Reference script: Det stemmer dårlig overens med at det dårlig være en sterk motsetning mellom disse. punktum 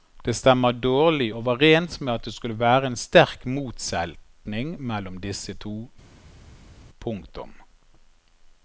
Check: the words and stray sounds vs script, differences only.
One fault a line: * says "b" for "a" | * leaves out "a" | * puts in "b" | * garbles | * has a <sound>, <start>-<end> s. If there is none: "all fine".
* says "skulle" for "dårlig"
* puts in "to"